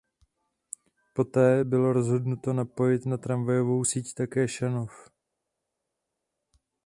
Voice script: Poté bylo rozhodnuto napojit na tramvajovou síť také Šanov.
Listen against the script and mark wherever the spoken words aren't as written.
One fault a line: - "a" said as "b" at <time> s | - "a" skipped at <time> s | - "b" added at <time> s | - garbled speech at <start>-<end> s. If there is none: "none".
none